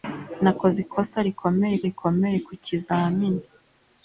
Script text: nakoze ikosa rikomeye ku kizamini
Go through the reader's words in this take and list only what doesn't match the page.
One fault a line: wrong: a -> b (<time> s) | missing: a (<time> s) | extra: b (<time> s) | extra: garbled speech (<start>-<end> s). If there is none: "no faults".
extra: rikomeye (1.9 s)